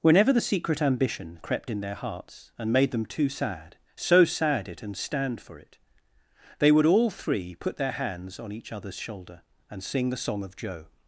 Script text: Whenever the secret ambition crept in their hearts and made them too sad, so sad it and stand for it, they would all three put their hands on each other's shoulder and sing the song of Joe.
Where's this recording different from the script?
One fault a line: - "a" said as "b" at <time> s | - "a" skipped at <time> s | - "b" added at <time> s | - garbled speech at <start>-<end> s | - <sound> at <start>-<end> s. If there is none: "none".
none